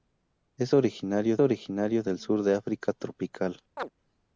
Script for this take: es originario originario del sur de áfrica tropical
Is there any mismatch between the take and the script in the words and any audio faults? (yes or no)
yes